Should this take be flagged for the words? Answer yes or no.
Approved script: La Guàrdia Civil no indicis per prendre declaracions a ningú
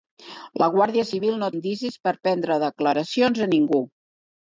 no